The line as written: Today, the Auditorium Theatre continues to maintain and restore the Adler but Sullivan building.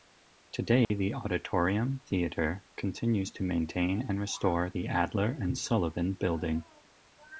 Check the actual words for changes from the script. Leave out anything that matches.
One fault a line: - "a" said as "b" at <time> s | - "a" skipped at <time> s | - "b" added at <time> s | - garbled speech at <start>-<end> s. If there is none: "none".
- "but" said as "and" at 5.4 s